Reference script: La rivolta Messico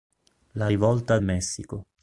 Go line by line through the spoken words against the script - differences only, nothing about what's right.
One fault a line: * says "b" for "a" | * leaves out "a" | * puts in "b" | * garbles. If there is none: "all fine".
all fine